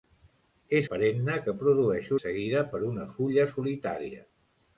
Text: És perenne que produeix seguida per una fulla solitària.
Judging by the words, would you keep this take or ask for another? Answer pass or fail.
pass